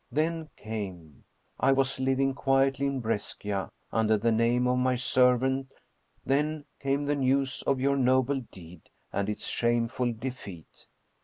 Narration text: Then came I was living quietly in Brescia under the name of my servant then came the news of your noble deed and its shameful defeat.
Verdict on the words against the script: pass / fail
pass